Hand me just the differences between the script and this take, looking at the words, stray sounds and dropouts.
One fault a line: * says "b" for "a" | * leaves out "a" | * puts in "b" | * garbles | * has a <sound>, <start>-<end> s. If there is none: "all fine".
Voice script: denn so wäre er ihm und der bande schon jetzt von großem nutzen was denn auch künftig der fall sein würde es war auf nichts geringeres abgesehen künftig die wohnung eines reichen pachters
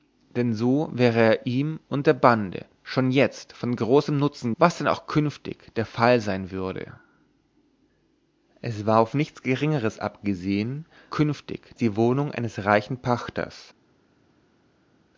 all fine